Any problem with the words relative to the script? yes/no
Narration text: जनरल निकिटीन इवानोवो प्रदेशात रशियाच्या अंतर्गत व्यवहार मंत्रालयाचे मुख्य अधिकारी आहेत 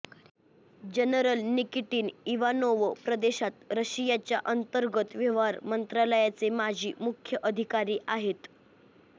yes